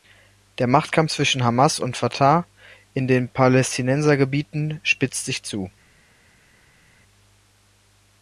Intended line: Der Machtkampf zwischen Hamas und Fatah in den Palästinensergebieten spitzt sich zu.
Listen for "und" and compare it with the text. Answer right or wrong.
right